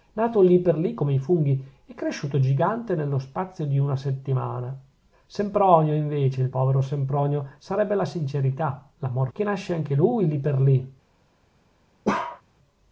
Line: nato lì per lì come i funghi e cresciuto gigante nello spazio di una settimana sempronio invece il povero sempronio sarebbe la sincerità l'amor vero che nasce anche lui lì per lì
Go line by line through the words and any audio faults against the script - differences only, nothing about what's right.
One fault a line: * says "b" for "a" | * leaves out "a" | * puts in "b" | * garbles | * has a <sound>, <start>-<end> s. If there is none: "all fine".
* leaves out "vero"
* has a bark, 12.0-12.4 s